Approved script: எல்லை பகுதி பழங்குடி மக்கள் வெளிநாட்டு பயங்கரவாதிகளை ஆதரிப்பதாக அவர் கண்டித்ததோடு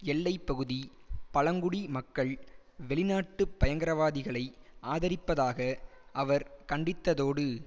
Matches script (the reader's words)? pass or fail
pass